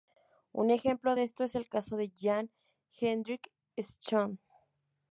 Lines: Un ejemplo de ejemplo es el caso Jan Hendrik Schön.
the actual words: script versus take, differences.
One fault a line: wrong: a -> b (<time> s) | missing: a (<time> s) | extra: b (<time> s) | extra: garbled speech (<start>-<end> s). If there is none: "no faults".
wrong: ejemplo -> esto (1.2 s)
extra: de (2.0 s)